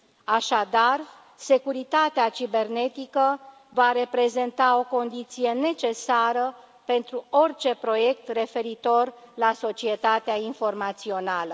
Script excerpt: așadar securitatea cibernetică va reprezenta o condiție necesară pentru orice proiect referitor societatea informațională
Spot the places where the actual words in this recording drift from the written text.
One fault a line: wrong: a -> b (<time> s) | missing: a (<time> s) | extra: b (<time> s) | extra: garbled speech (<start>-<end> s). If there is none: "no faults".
extra: la (9.3 s)